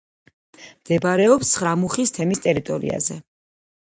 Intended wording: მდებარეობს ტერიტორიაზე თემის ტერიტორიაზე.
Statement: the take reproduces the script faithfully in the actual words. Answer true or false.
false